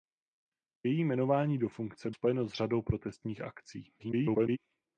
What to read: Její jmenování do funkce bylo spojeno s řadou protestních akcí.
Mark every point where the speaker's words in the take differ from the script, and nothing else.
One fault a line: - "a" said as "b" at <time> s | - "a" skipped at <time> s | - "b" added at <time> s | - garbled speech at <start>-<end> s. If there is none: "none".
- "bylo" skipped at 2.1 s
- garbled speech at 4.0-4.6 s